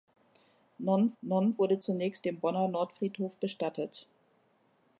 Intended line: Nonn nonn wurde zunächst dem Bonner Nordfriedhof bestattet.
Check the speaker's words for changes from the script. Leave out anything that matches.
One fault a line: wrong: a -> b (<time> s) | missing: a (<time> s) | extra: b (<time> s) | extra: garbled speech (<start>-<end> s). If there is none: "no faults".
no faults